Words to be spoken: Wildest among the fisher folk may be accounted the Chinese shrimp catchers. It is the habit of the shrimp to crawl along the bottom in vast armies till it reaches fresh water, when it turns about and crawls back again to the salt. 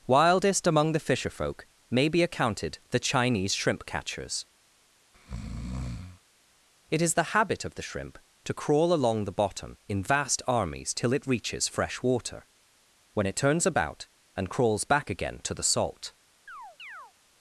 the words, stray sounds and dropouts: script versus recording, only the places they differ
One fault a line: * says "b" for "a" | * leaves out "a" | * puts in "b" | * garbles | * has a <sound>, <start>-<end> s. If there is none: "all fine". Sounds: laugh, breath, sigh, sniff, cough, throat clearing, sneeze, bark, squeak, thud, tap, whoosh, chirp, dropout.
* has a breath, 5.1-6.2 s
* has a chirp, 16.5-17.1 s